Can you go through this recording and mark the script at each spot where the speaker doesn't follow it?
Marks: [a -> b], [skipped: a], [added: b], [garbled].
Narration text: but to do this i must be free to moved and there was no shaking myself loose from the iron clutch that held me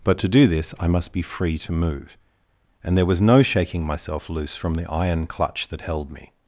but to do this i must be free to [moved -> move] and there was no shaking myself loose from the iron clutch that held me